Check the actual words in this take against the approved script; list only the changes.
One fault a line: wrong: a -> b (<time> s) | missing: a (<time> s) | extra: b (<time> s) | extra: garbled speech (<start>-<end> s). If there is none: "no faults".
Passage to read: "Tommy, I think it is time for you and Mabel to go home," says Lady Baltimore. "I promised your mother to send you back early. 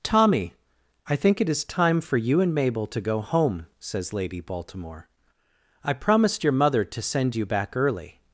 no faults